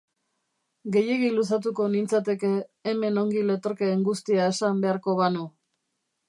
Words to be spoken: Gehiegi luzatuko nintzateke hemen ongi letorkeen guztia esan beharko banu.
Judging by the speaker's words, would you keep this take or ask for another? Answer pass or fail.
pass